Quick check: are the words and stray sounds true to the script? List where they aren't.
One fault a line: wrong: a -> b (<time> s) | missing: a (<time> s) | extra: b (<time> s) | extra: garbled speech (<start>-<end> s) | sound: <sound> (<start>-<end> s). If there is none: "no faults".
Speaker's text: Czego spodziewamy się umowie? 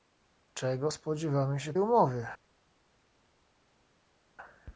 no faults